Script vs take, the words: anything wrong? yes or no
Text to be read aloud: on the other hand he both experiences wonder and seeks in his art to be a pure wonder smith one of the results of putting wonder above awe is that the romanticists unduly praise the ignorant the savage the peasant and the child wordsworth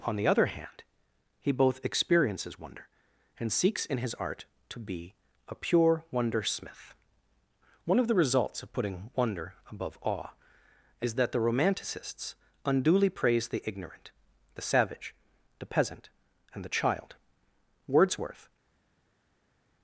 no